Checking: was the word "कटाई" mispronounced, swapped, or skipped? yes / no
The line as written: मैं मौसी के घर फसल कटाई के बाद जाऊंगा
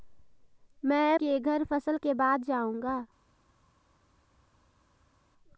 yes